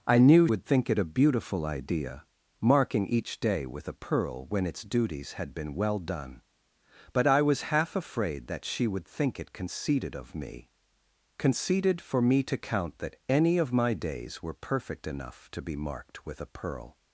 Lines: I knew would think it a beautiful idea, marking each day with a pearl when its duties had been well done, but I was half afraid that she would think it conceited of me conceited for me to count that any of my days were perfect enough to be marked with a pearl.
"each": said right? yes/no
yes